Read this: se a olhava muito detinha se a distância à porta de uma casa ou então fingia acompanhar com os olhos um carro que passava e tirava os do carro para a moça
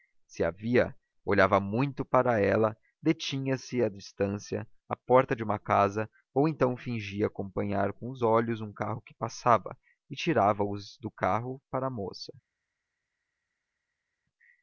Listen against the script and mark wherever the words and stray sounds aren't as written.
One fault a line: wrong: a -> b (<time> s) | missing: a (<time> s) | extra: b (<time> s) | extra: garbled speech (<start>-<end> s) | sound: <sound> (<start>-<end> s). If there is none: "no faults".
extra: via (0.5 s)
extra: para ela (2.0 s)